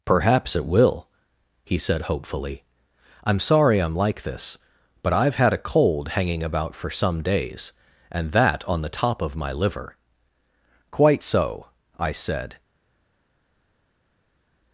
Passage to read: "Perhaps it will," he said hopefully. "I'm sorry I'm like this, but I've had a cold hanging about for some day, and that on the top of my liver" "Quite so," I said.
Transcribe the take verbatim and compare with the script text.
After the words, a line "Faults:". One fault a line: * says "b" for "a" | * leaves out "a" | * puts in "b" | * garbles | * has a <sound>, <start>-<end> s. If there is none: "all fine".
"Perhaps it will," he said hopefully. "I'm sorry I'm like this, but I've had a cold hanging about for some days, and that on the top of my liver" "Quite so," I said.
Faults:
* says "days" for "day"